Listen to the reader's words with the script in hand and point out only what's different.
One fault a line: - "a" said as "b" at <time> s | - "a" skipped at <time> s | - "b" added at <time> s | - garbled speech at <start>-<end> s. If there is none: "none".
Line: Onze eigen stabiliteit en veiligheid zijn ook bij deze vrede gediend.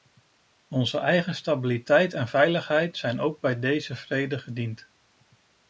none